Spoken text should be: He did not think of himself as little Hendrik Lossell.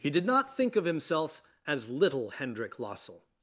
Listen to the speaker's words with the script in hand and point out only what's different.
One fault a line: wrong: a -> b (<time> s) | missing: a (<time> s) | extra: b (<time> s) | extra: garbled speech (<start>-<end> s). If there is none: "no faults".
no faults